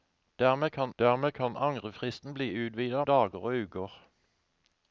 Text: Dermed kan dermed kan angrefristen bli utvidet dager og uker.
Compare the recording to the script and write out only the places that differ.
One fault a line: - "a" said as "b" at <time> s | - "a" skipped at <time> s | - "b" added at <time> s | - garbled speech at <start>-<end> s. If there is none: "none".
none